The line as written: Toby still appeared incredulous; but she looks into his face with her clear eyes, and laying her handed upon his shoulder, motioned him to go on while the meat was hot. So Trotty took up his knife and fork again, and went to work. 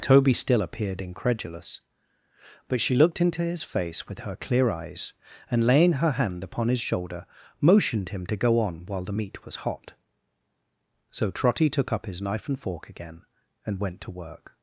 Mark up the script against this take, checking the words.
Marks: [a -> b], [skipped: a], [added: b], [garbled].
Toby still appeared incredulous; but she [looks -> looked] into his face with her clear eyes, and laying her [handed -> hand] upon his shoulder, motioned him to go on while the meat was hot. So Trotty took up his knife and fork again, and went to work.